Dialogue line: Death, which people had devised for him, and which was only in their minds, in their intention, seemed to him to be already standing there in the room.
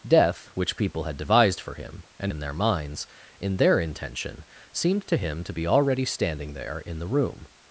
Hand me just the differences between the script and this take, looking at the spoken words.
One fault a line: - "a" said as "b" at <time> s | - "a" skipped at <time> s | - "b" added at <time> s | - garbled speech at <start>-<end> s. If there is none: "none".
- "which was only" skipped at 2.3 s